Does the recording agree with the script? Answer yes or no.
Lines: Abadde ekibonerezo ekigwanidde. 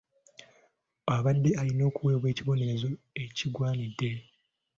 no